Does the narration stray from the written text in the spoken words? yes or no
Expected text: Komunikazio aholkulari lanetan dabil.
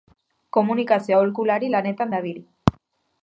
no